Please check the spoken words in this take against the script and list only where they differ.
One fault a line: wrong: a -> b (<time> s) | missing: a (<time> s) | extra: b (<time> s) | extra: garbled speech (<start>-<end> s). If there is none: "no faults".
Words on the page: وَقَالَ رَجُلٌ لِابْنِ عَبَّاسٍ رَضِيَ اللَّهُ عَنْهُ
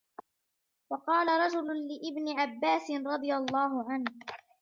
no faults